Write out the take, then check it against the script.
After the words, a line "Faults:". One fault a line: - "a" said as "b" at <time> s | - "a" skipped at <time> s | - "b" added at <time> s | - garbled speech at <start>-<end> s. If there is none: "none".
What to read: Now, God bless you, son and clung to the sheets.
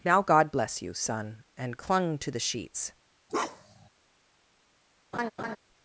Now, God bless you, son and clung to the sheets.
Faults:
none